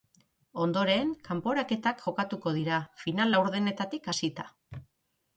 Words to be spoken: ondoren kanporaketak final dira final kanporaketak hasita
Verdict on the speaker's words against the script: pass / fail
fail